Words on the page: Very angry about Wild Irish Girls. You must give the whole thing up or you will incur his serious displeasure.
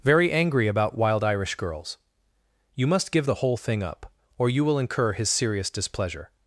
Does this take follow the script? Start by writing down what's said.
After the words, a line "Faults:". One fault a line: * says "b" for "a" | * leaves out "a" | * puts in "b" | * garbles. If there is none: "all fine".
Very angry about Wild Irish Girls. You must give the whole thing up or you will incur his serious displeasure.
Faults:
all fine